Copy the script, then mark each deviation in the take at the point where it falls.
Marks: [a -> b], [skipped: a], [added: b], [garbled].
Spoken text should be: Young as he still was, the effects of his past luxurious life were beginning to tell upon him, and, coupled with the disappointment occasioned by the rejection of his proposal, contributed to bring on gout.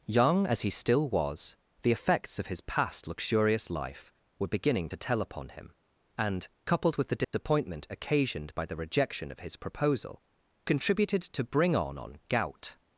Young as he still was, the effects of his past luxurious life were beginning to tell upon him, and, coupled with the disappointment occasioned by the rejection of his proposal, contributed to bring on [added: on] gout.